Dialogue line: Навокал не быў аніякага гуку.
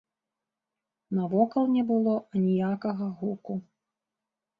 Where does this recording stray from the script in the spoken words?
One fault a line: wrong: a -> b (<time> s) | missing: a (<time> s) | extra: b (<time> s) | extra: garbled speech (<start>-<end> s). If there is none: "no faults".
wrong: быў -> было (1.9 s)